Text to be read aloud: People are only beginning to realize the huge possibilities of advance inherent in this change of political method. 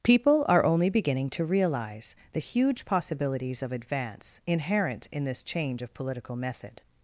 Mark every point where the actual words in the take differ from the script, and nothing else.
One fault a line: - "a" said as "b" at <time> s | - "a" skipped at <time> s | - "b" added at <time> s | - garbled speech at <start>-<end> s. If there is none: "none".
none